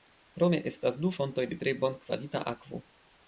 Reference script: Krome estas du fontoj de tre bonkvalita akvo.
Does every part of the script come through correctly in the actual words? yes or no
yes